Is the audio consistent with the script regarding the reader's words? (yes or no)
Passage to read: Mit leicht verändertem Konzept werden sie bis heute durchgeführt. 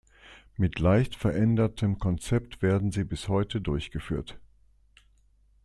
yes